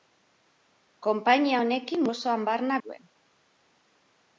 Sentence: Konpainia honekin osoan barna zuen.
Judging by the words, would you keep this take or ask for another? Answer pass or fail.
pass